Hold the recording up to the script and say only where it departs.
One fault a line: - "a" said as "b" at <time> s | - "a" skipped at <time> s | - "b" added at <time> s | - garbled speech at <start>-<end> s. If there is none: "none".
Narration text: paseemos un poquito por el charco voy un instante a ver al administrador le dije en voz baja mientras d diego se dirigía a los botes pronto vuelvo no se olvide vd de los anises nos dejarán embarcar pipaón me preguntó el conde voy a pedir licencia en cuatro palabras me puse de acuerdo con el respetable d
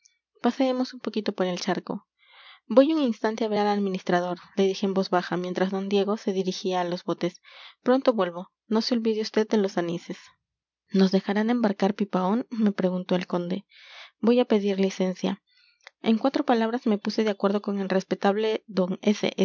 none